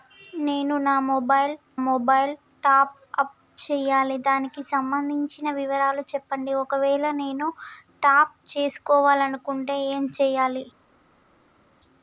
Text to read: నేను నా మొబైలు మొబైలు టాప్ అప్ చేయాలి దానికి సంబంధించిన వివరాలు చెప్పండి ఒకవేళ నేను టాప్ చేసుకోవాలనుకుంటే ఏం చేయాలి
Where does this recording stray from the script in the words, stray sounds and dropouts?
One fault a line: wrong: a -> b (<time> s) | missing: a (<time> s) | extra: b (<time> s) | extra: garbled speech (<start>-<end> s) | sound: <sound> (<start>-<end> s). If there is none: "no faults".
no faults